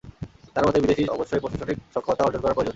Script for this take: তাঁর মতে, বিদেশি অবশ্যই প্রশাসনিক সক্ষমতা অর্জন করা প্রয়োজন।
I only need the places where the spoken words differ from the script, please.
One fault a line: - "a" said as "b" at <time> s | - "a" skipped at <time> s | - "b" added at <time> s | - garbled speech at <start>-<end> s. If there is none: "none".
none